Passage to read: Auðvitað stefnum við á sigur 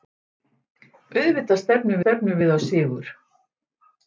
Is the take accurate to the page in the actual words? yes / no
no